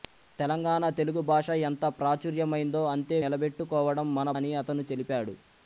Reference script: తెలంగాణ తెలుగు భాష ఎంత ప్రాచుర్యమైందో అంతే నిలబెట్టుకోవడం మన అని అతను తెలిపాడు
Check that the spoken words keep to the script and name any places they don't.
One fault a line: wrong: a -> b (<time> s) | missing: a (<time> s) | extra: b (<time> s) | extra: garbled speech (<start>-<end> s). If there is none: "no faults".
no faults